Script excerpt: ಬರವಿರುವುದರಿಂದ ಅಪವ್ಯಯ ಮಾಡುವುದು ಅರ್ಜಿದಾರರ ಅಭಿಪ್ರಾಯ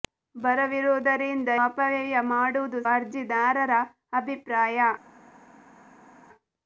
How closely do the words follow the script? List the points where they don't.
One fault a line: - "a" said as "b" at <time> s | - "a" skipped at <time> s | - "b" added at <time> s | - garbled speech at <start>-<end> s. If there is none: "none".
none